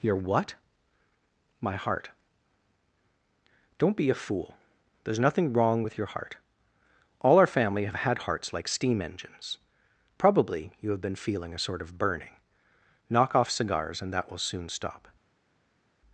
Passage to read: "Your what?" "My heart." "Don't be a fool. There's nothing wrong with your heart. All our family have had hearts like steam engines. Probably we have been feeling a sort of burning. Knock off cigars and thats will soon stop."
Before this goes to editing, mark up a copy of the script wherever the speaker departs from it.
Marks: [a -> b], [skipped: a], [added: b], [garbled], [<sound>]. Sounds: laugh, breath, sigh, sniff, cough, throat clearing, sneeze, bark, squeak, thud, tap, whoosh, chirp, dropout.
"Your what?" "My heart." "Don't be a fool. There's nothing wrong with your heart. All our family have had hearts like steam engines. Probably [we -> you] have been feeling a sort of burning. Knock off cigars and [thats -> that] will soon stop."